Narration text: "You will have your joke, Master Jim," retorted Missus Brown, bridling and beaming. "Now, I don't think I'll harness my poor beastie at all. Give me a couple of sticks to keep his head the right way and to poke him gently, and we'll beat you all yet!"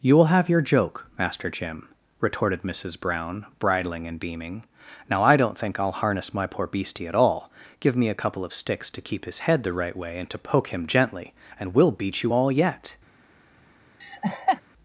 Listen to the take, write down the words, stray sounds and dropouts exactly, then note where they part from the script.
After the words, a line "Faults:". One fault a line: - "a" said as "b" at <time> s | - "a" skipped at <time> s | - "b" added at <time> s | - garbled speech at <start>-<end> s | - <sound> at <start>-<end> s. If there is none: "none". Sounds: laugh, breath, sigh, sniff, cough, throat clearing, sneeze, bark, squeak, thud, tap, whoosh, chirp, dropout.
"You will have your joke, Master Jim," retorted Missus Brown, bridling and beaming. "Now, I don't think I'll harness my poor beastie at all. Give me a couple of sticks to keep his head the right way and to poke him gently, and we'll beat you all yet!"
Faults:
- laugh at 14.0-14.6 s